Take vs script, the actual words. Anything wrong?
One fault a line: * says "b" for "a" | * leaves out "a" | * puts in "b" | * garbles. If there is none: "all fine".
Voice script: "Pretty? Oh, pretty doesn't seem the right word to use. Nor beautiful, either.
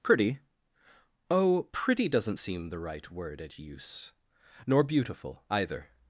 * says "at" for "to"